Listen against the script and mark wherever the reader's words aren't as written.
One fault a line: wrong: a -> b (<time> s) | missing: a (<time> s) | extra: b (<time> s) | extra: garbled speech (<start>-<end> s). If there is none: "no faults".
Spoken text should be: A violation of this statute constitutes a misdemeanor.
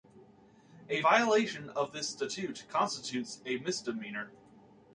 no faults